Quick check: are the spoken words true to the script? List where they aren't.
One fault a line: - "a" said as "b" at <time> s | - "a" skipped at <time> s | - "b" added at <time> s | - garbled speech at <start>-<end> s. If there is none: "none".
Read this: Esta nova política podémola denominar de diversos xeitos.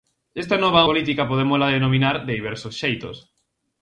none